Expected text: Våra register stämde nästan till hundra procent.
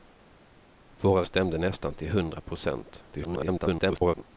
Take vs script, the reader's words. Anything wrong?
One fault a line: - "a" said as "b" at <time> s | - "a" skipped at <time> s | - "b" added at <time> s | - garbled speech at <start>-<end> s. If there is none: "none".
- "register" skipped at 1.2 s
- garbled speech at 3.1-4.2 s